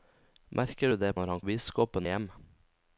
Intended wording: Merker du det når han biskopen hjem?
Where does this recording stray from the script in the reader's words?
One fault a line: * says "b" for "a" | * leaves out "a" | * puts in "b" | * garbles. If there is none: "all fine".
all fine